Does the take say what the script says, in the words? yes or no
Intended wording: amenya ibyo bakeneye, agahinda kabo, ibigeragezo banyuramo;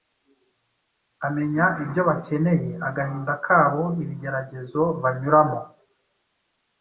yes